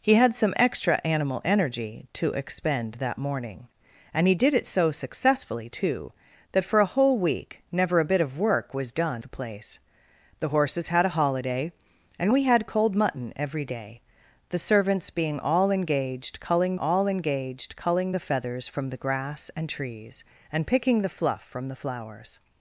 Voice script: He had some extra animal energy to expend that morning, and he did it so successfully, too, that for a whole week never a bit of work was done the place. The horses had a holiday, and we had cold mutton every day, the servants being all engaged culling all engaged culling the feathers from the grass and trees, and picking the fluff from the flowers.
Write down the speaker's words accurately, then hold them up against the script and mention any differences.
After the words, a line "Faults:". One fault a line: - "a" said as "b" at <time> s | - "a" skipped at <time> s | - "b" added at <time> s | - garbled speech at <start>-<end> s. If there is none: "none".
He had some extra animal energy to expend that morning, and he did it so successfully, too, that for a whole week never a bit of work was done the place. The horses had a holiday, and we had cold mutton every day, the servants being all engaged culling all engaged culling the feathers from the grass and trees, and picking the fluff from the flowers.
Faults:
none